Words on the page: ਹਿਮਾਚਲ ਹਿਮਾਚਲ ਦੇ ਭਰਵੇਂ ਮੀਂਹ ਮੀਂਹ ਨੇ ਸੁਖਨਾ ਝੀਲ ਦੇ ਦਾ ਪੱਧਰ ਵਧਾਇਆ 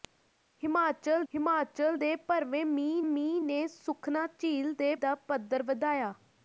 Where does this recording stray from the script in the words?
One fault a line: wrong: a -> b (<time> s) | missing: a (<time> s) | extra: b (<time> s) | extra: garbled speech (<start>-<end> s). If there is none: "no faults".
no faults